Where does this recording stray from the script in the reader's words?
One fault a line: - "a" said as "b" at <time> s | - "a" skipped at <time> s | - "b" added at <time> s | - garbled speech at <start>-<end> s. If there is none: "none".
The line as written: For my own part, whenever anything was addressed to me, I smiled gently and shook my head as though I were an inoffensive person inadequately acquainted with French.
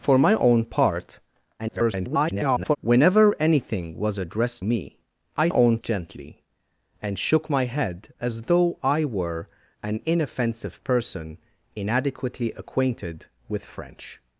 - garbled speech at 1.6-2.8 s
- "to" skipped at 4.6 s
- "smiled" said as "own" at 5.5 s